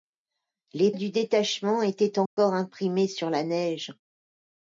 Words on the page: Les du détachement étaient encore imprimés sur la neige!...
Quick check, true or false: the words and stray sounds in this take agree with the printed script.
false